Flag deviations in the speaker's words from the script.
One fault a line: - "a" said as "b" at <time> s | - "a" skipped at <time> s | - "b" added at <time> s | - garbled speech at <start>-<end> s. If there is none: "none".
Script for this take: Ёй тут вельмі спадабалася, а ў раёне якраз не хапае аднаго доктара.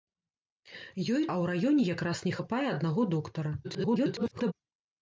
- "тут вельмі спадабалася" skipped at 1.2 s
- garbled speech at 3.6-4.5 s